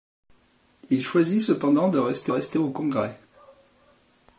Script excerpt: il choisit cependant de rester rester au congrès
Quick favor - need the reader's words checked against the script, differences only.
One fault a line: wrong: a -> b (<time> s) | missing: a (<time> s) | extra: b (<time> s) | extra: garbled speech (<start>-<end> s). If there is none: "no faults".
no faults